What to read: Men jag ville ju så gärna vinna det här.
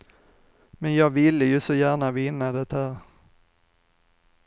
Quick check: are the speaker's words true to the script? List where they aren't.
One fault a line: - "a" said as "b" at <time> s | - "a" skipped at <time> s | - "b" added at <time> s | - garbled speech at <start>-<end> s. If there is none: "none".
none